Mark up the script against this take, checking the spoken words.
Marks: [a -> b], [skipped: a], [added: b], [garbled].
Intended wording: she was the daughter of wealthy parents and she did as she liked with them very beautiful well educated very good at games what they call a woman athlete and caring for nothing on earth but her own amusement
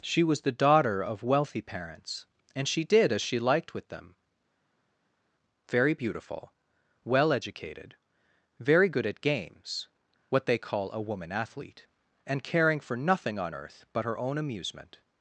she was the daughter of wealthy parents and she did as she liked with them very beautiful well educated very good at games what they call a woman athlete and caring for nothing on earth but her own amusement